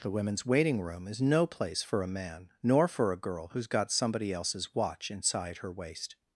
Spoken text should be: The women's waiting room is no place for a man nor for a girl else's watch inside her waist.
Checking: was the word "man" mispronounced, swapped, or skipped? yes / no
no